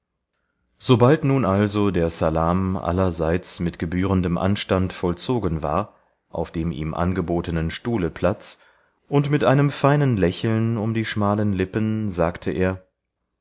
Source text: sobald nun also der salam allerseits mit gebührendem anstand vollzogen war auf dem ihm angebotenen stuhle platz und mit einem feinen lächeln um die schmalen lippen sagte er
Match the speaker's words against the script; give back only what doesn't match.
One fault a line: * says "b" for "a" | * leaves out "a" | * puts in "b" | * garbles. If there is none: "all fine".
all fine